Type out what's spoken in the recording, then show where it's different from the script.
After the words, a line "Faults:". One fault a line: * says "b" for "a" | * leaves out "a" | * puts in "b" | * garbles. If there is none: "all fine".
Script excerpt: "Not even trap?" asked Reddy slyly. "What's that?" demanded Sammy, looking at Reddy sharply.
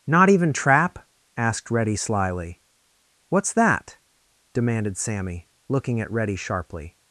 "Not even trap?" asked Reddy slyly. "What's that?" demanded Sammy, looking at Reddy sharply.
Faults:
all fine